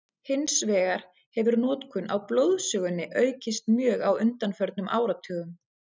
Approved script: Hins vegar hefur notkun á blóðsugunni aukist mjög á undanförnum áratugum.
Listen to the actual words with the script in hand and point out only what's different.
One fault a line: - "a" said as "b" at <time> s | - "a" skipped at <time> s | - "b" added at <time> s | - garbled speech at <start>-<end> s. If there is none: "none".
none